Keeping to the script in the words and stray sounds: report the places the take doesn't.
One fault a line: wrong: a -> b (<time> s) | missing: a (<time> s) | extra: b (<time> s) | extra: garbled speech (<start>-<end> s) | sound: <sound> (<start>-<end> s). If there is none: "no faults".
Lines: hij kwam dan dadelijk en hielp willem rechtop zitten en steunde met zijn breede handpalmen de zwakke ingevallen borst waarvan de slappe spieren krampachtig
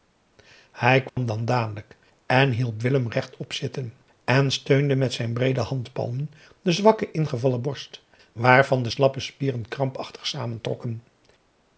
sound: dropout (1.1-1.2 s)